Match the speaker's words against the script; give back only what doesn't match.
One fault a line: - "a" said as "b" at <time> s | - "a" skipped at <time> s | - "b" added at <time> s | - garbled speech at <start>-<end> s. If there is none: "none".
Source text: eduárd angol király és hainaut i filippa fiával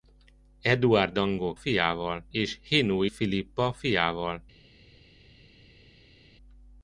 - "király" said as "fiával" at 1.5 s
- "i" skipped at 3.1 s